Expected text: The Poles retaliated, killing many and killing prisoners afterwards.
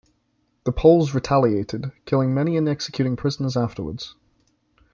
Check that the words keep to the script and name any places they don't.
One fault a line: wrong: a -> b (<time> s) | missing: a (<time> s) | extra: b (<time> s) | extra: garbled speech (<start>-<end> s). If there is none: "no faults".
wrong: killing -> executing (2.7 s)